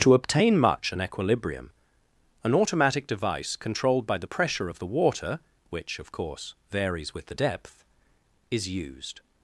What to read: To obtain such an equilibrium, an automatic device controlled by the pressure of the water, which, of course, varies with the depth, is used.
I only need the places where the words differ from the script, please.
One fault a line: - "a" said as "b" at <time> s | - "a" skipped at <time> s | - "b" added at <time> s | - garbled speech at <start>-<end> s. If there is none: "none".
- "such" said as "much" at 0.6 s